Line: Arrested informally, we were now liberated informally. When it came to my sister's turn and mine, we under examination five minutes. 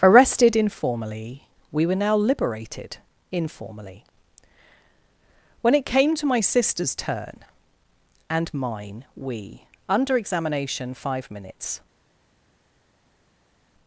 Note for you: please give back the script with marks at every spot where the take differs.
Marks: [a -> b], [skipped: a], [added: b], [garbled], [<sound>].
Arrested informally, we were now liberated informally. When it came to my sister's turn and mine, we under examination five minutes.